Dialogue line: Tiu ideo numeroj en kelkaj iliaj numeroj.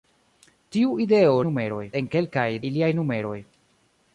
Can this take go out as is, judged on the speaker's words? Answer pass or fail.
pass